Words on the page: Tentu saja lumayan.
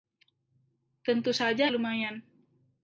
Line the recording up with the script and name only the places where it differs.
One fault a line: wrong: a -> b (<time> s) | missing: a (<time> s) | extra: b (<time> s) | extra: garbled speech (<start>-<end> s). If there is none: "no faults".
no faults